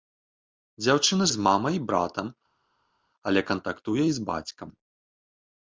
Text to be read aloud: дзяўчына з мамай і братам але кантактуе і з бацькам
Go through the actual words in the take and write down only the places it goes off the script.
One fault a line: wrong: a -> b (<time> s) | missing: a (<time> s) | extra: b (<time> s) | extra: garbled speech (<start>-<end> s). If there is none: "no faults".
no faults